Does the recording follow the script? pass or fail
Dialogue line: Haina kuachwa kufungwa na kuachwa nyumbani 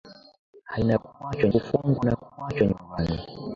pass